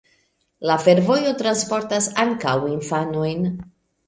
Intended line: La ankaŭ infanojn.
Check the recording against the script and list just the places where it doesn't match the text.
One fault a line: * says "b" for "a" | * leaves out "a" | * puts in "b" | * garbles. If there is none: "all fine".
* puts in "fervojo transportas"